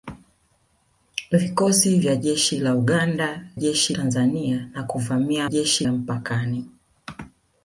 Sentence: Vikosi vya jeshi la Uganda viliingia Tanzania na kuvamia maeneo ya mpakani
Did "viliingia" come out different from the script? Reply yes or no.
yes